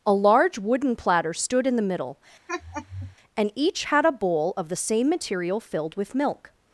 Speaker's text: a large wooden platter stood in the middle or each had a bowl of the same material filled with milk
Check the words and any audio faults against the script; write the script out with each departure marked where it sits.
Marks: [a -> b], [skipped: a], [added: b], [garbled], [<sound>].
a large wooden platter stood in the middle [laugh] [or -> and] each had a bowl of the same material filled with milk